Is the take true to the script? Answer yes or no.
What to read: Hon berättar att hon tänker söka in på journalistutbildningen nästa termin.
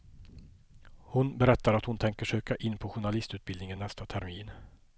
yes